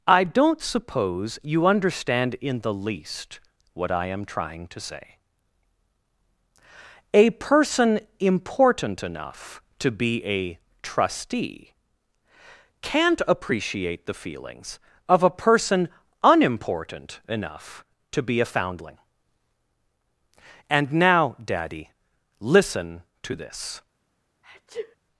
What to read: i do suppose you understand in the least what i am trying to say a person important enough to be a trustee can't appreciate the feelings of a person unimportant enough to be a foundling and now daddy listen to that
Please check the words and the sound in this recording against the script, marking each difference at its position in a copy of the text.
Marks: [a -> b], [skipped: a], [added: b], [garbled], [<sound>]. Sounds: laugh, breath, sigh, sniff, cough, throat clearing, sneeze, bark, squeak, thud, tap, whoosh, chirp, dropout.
i [do -> don't] suppose you understand in the least what i am trying to say a person important enough to be a trustee can't appreciate the feelings of a person unimportant enough to be a foundling and now daddy listen to [that -> this] [sneeze]